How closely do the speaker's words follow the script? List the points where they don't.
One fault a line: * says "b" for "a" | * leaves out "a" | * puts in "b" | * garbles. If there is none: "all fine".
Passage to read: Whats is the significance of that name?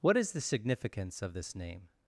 * says "What" for "Whats"
* says "this" for "that"